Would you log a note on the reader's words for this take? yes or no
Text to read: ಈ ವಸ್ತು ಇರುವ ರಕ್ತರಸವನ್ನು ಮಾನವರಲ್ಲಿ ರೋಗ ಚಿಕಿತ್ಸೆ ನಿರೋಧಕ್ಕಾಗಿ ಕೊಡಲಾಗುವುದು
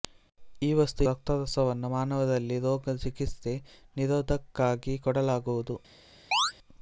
yes